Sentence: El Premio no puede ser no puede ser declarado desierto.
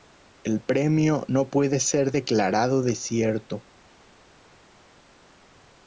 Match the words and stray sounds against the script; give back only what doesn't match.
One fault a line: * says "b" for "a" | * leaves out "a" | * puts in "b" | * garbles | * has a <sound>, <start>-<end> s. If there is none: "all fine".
* leaves out "no puede ser"